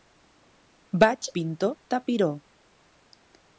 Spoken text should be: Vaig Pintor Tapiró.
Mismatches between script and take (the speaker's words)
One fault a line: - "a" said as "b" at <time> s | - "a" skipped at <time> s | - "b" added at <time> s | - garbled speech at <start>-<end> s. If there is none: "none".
none